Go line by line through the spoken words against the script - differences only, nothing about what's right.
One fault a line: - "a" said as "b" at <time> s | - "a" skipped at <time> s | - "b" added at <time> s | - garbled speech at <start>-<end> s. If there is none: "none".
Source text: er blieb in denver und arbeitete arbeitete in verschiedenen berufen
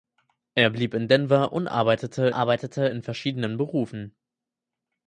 none